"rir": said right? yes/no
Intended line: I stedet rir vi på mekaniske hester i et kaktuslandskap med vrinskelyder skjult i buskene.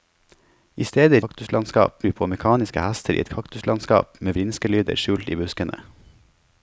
no